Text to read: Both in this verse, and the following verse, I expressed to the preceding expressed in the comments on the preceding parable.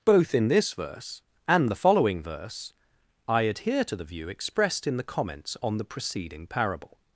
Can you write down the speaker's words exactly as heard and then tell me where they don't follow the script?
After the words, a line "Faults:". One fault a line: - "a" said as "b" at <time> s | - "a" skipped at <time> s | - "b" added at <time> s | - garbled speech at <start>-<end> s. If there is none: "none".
Both in this verse, and the following verse, I adhere to the view expressed in the comments on the preceding parable.
Faults:
- "expressed" said as "adhere" at 3.4 s
- "preceding" said as "view" at 4.0 s